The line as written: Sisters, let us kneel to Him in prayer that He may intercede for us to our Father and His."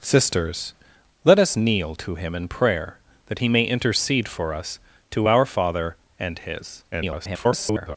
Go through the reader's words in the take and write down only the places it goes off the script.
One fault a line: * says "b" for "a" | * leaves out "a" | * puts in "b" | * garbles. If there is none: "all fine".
* garbles